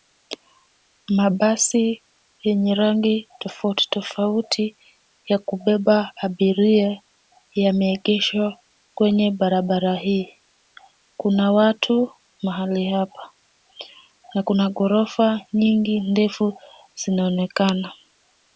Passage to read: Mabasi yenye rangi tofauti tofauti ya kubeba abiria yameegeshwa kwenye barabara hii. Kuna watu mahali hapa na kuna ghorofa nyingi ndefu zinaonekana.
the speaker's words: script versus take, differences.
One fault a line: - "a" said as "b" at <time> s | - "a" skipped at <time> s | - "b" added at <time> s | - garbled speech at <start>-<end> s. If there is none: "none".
none